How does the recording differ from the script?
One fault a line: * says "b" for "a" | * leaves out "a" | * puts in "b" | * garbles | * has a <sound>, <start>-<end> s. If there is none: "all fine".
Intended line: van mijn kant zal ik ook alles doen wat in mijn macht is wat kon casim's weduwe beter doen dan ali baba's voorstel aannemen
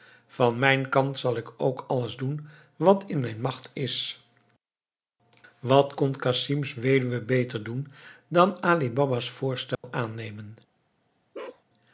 * has a dropout, 9.7-9.8 s
* has a bark, 11.3-11.6 s